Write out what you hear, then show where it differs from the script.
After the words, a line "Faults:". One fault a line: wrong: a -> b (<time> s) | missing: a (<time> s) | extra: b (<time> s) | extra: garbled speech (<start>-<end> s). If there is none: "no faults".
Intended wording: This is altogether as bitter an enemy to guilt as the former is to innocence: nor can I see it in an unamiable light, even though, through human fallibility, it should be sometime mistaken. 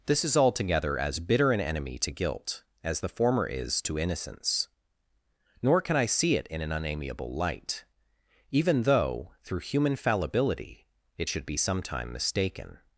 This is altogether as bitter an enemy to guilt as the former is to innocence: nor can I see it in an unamiable light, even though, through human fallibility, it should be sometime mistaken.
Faults:
no faults